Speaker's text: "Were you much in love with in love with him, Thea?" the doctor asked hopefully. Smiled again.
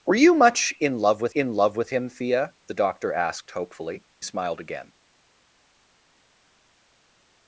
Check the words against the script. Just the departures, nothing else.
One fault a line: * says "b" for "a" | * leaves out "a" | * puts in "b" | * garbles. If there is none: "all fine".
all fine